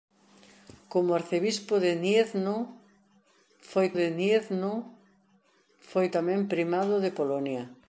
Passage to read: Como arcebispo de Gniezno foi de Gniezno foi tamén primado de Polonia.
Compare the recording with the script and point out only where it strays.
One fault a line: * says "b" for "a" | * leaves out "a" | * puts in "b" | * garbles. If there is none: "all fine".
all fine